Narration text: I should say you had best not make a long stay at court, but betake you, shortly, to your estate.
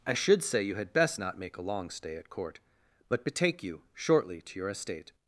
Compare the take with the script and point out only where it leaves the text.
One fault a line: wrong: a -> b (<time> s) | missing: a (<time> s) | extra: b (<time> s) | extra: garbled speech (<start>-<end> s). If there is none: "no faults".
no faults